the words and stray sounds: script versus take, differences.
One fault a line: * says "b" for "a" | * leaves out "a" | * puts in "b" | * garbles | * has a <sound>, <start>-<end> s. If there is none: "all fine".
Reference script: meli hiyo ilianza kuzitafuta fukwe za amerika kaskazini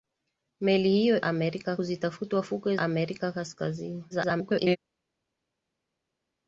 * says "amerika" for "ilianza"
* leaves out "za"
* garbles